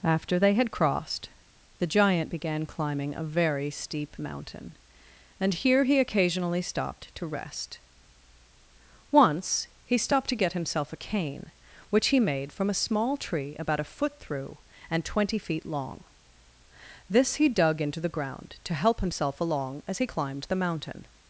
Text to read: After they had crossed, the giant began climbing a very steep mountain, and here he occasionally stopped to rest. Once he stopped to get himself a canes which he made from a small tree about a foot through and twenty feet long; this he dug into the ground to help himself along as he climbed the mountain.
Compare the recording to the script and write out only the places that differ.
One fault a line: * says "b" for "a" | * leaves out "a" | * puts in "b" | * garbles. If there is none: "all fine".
* says "cane" for "canes"